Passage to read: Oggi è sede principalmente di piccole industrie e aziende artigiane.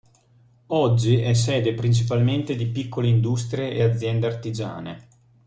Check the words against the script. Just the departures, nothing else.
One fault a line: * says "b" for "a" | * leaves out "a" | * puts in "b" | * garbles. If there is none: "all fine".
all fine